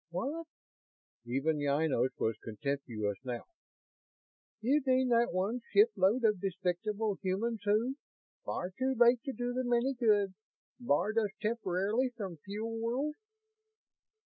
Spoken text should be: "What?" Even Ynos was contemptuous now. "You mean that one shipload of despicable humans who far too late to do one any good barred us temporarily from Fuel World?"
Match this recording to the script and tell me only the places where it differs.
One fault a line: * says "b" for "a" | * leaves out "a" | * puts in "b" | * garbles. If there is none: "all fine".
* says "them" for "one"